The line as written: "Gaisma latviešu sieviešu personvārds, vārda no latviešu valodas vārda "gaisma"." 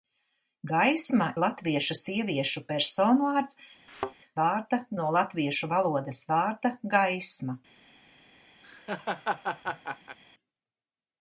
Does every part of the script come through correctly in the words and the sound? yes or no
no